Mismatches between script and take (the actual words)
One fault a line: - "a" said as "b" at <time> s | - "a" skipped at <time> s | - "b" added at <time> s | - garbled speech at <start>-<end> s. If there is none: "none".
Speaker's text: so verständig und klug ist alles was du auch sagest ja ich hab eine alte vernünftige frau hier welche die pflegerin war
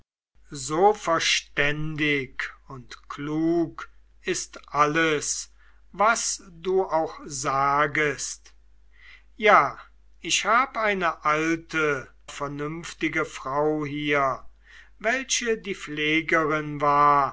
none